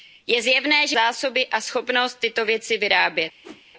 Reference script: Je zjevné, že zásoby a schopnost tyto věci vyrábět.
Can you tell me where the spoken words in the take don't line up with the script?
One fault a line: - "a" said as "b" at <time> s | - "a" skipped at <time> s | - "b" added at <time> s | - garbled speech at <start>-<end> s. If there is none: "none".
none